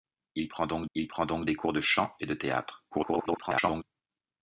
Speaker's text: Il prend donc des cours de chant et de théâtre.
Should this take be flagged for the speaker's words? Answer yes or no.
yes